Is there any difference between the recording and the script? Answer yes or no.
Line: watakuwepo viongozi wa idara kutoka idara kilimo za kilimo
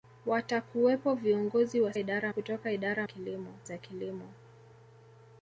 no